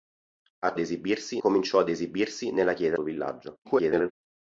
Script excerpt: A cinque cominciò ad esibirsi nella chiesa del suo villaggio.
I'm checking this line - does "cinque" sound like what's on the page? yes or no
no